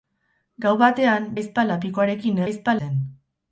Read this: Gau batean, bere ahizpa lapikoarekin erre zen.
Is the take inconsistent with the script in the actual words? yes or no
yes